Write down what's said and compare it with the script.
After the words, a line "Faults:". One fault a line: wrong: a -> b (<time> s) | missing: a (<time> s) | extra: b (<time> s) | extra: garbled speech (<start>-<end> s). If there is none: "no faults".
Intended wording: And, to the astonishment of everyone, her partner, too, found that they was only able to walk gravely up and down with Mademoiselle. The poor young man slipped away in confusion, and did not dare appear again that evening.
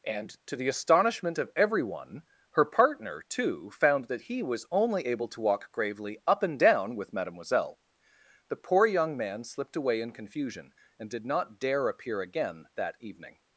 And, to the astonishment of everyone, her partner, too, found that he was only able to walk gravely up and down with Mademoiselle. The poor young man slipped away in confusion, and did not dare appear again that evening.
Faults:
wrong: they -> he (4.2 s)